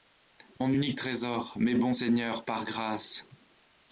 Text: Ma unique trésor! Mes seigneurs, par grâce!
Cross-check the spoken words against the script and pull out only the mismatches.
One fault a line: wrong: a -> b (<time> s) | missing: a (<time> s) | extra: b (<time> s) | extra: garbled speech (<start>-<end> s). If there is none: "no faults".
wrong: Ma -> Mon (0.6 s)
extra: bons (1.7 s)